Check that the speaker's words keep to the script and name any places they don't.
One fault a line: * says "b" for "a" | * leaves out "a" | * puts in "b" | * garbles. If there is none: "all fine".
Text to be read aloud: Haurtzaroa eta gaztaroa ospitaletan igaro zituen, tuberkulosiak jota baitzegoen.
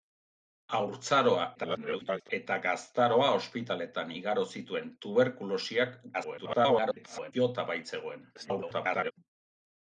* garbles
* garbles
* garbles